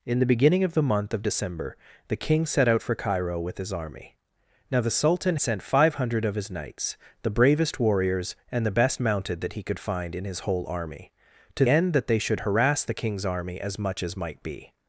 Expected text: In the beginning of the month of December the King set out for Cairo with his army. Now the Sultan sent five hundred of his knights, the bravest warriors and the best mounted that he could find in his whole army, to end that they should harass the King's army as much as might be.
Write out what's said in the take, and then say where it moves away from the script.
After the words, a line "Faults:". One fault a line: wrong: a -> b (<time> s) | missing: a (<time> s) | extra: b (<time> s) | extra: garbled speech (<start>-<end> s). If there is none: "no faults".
In the beginning of the month of December the King set out for Cairo with his army. Now the Sultan sent five hundred of his knights, the bravest warriors and the best mounted that he could find in his whole army, to end that they should harass the King's army as much as might be.
Faults:
no faults